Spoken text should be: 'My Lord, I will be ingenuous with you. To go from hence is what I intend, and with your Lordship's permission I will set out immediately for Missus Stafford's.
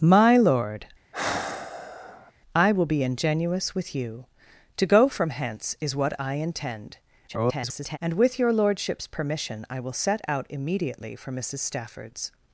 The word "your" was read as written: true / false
true